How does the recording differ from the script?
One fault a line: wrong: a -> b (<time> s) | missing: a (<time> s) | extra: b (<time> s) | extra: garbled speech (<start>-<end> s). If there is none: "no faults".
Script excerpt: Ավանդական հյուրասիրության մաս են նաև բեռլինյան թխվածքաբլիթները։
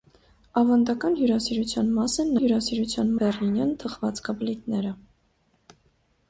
wrong: նաև -> հյուրասիրության (2.4 s)